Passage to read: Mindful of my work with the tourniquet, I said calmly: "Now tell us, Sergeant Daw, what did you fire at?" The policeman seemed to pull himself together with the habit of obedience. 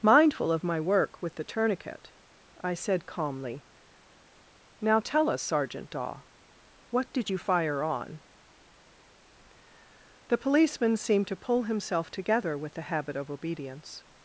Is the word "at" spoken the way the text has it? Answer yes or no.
no